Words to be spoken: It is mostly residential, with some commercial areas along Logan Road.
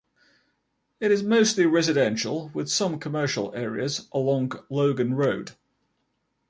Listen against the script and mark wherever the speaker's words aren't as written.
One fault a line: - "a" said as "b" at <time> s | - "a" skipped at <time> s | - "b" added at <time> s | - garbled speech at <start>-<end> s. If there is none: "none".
none